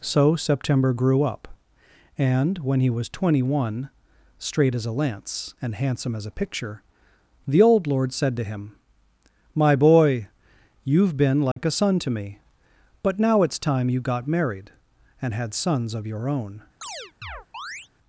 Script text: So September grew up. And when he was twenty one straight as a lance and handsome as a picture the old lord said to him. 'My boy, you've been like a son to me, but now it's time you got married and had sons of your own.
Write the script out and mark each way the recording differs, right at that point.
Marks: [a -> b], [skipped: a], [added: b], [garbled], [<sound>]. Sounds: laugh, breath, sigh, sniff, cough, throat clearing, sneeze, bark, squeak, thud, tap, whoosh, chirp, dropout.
So September grew up. And when he was twenty one straight as a lance and handsome as a picture the old lord said to him. 'My boy, you've been like [dropout] a son to me, but now it's time you got married and had sons of your own. [chirp]